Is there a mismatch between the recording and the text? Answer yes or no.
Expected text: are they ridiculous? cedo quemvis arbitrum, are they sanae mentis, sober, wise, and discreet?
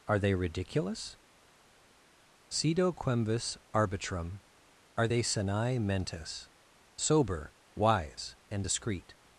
no